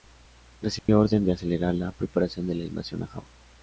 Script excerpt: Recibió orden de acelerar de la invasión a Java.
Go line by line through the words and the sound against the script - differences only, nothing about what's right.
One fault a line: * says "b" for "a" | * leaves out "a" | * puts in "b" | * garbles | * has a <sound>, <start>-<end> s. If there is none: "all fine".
* has a dropout, 0.8-0.9 s
* puts in "la preparación"